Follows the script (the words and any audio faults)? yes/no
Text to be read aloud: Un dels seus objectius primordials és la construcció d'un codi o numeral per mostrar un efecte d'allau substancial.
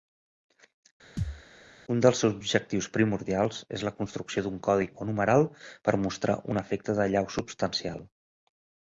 no